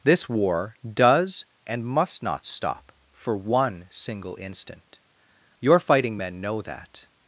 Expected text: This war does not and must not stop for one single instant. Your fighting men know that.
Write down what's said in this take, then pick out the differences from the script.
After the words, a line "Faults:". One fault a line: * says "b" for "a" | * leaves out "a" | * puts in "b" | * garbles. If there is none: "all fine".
This war does and must not stop for one single instant. Your fighting men know that.
Faults:
* leaves out "not"